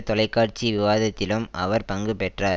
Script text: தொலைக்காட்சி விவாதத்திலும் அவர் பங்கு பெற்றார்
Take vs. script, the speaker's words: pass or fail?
pass